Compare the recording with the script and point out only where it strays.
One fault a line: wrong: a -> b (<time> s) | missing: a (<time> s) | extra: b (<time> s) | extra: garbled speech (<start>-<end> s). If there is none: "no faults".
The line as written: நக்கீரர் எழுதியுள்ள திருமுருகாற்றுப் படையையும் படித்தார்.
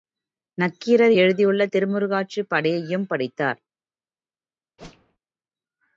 no faults